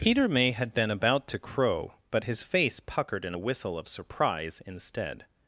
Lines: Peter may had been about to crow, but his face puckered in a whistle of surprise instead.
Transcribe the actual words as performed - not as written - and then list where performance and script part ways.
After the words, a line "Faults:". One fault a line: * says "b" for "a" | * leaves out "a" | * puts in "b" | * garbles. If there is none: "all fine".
Peter may had been about to crow, but his face puckered in a whistle of surprise instead.
Faults:
all fine